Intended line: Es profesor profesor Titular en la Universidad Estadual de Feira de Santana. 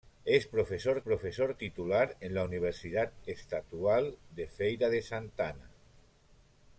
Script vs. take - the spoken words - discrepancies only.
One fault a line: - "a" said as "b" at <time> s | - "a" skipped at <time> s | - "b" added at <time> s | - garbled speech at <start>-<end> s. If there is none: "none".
none